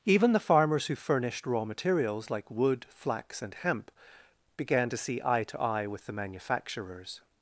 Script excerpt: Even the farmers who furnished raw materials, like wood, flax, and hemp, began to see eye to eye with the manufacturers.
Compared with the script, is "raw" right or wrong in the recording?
right